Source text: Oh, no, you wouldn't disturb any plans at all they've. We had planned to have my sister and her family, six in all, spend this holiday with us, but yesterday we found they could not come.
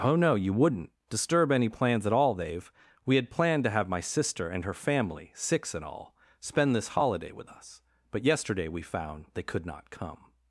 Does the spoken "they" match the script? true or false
true